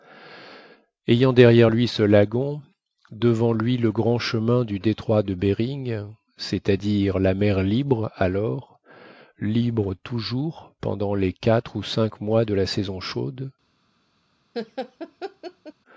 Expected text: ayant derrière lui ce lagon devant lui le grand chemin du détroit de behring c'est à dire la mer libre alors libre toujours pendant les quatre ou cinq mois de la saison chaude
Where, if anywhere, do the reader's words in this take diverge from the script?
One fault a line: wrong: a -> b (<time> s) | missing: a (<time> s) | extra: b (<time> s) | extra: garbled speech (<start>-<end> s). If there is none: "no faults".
no faults